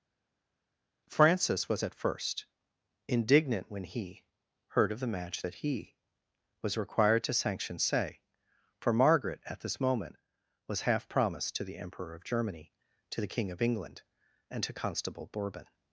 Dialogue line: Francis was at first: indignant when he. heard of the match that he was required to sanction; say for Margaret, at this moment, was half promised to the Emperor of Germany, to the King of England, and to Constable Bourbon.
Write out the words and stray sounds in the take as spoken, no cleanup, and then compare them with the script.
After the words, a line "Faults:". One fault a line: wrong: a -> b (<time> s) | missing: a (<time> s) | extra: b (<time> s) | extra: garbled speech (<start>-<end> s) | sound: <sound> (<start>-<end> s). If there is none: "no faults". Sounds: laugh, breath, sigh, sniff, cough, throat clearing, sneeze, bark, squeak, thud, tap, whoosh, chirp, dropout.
Francis was at first: indignant when he. heard of the match that he was required to sanction; say for Margaret, at this moment, was half promised to the Emperor of Germany, to the King of England, and to Constable Bourbon.
Faults:
no faults